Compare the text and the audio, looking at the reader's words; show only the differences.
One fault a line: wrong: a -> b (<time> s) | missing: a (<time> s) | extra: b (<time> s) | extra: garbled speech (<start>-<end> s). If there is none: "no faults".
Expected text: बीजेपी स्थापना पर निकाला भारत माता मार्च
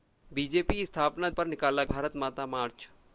no faults